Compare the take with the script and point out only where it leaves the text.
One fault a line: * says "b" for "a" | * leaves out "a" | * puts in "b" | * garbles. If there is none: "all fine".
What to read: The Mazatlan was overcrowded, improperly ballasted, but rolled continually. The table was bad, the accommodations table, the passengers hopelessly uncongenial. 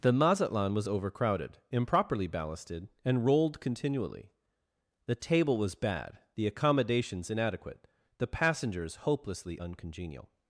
* says "and" for "but"
* says "inadequate" for "table"